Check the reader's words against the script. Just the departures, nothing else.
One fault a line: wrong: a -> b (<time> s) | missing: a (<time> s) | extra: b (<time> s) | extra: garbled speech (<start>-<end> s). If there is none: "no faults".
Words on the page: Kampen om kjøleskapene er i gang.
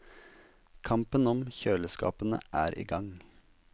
no faults